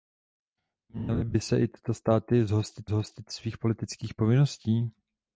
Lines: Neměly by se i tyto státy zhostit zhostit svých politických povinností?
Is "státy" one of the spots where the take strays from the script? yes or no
no